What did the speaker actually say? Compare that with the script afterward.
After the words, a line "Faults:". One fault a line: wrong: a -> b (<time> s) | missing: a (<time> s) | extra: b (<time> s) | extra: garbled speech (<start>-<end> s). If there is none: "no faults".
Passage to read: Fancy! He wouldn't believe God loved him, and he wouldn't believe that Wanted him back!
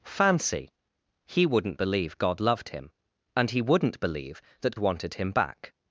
Fancy! He wouldn't believe God loved him, and he wouldn't believe that Wanted him back!
Faults:
no faults